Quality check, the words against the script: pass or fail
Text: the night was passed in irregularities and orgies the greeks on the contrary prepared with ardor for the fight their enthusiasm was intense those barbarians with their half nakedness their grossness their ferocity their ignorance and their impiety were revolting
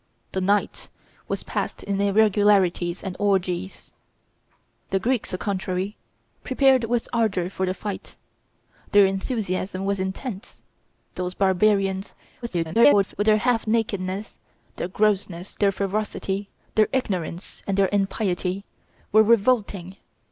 fail